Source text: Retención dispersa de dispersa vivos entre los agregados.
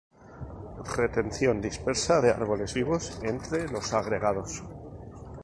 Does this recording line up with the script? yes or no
no